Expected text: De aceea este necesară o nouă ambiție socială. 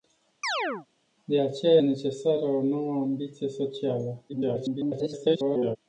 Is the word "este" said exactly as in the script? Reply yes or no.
no